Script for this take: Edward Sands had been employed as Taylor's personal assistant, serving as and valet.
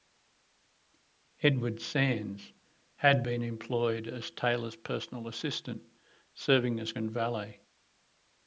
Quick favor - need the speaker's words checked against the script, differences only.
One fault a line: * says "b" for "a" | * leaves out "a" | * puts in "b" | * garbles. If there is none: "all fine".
all fine